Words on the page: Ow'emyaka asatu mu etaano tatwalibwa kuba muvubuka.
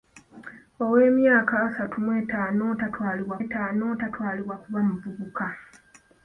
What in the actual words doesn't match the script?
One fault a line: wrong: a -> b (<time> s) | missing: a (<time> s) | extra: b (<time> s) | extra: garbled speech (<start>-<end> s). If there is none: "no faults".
extra: etaano tatwalibwa (3.4 s)